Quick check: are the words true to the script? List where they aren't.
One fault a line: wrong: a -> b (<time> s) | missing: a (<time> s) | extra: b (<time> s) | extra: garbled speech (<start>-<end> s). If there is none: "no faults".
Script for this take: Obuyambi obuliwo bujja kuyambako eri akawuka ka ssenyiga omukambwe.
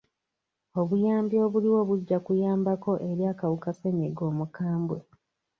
missing: ka (3.7 s)